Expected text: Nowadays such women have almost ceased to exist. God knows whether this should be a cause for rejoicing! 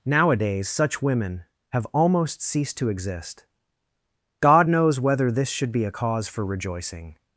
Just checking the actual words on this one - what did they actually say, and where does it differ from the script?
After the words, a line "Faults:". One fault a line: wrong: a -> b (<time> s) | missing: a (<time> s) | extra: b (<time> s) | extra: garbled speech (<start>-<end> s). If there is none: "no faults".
Nowadays such women have almost ceased to exist. God knows whether this should be a cause for rejoicing!
Faults:
no faults